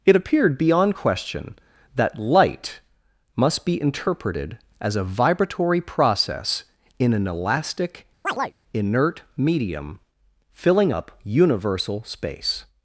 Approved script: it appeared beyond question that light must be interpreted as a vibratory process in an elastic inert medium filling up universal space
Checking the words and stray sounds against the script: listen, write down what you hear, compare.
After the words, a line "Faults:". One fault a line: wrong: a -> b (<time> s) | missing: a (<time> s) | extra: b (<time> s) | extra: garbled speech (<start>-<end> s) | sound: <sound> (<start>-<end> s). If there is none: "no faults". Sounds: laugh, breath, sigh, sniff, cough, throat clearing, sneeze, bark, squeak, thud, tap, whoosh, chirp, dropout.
it appeared beyond question that light must be interpreted as a vibratory process in an elastic inert medium filling up universal space
Faults:
sound: chirp (8.2-8.5 s)